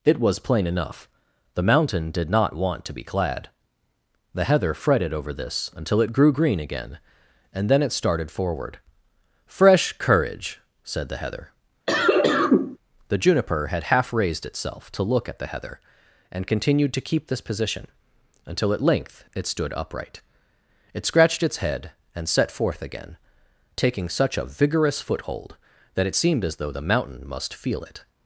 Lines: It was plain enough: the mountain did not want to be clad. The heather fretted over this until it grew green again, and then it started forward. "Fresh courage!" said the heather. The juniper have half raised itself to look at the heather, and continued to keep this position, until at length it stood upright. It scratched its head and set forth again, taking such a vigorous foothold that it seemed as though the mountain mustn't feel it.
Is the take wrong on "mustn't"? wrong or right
wrong